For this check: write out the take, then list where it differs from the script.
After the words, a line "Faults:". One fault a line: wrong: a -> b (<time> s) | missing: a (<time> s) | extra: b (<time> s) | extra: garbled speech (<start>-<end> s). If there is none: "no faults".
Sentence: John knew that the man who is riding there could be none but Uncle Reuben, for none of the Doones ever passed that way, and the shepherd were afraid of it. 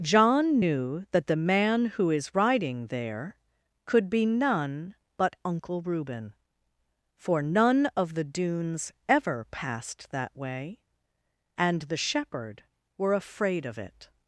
John knew that the man who is riding there could be none but Uncle Reuben, for none of the Doones ever passed that way, and the shepherd were afraid of it.
Faults:
no faults